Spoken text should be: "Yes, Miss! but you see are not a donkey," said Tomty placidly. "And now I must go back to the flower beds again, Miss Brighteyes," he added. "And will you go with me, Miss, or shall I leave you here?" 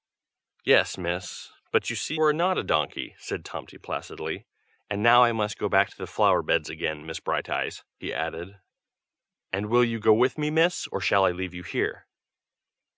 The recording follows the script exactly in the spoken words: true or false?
true